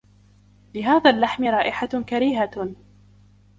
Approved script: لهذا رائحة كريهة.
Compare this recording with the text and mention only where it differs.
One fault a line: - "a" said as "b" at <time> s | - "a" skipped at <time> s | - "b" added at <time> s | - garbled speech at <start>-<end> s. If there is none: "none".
- "اللحم" added at 1.1 s